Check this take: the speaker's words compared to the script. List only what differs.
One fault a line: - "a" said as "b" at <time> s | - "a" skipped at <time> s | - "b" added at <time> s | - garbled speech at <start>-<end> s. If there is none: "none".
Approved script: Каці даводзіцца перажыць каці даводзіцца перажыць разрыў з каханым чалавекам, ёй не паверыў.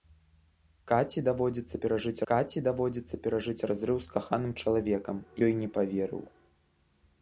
none